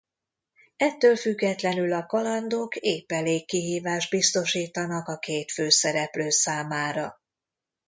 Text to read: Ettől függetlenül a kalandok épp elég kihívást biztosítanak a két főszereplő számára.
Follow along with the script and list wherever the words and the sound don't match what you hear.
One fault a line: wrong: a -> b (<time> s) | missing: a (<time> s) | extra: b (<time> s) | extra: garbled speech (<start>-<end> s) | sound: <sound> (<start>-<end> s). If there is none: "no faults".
no faults